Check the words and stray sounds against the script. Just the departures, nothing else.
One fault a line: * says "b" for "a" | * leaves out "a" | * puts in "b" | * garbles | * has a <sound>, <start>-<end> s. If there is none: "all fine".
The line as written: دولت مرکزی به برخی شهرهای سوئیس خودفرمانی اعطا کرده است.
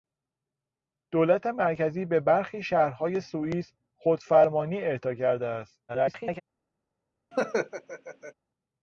* garbles
* has a laugh, 7.3-8.3 s